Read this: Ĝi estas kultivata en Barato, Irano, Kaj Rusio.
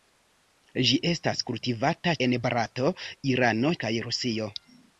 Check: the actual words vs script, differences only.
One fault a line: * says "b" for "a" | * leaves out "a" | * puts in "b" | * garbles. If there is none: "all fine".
all fine